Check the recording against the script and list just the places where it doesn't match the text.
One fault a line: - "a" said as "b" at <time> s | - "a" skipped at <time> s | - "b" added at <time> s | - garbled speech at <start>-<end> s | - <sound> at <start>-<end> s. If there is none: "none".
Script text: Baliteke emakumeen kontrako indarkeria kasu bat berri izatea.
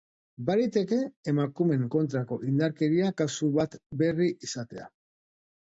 none